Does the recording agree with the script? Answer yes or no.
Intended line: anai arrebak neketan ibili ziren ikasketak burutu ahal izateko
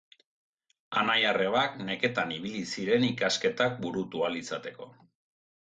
yes